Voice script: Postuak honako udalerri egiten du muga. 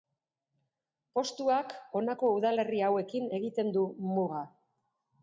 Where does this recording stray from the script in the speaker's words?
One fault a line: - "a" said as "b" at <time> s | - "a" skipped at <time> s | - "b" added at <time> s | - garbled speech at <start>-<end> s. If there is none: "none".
- "hauekin" added at 2.9 s